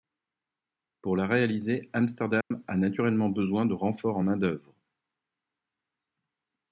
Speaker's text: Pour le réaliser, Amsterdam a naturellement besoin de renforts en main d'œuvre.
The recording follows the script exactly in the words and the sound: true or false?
false